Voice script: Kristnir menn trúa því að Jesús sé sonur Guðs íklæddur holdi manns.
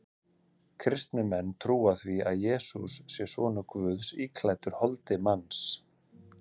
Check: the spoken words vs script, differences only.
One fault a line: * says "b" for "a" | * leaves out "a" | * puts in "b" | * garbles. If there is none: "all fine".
all fine